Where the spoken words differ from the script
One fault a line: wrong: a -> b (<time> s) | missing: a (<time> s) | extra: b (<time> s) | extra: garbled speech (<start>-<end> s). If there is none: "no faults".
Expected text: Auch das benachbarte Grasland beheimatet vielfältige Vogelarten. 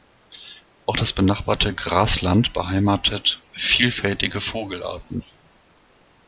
no faults